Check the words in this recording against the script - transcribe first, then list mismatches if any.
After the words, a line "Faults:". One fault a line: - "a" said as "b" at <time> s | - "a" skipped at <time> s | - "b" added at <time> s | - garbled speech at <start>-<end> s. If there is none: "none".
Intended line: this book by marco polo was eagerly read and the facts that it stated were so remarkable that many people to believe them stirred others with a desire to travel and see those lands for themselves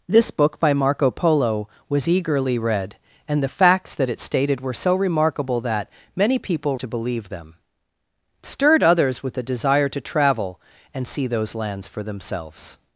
this book by marco polo was eagerly read and the facts that it stated were so remarkable that many people to believe them stirred others with a desire to travel and see those lands for themselves
Faults:
none